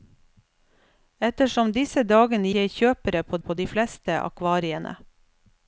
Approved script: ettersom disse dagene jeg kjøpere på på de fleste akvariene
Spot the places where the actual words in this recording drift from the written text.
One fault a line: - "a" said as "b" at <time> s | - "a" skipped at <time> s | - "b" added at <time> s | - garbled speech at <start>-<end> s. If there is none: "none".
none